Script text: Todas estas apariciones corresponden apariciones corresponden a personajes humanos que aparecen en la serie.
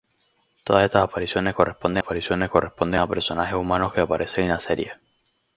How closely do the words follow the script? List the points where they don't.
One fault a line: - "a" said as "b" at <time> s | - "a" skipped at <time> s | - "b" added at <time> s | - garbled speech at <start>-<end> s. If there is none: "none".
none